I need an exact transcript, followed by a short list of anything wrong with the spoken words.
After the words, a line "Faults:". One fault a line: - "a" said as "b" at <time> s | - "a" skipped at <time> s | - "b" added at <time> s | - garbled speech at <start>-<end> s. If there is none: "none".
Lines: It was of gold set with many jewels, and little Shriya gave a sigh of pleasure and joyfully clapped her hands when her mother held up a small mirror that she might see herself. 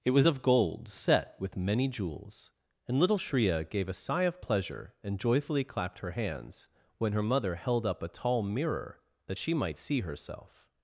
It was of gold set with many jewels, and little Shriya gave a sigh of pleasure and joyfully clapped her hands when her mother held up a tall mirror that she might see herself.
Faults:
- "small" said as "tall" at 8.1 s